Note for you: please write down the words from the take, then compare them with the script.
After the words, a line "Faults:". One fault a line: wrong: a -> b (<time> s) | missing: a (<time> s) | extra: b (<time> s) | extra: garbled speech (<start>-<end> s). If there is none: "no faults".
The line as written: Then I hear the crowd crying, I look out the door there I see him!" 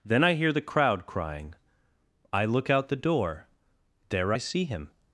Then I hear the crowd crying, I look out the door there I see him!"
Faults:
no faults